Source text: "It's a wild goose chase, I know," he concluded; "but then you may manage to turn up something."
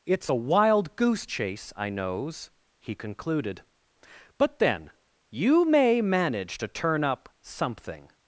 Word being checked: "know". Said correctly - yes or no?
no